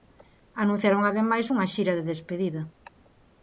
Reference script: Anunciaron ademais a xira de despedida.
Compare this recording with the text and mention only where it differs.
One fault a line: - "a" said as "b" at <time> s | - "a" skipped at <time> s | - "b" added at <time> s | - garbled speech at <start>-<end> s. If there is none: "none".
- "a" said as "unha" at 1.5 s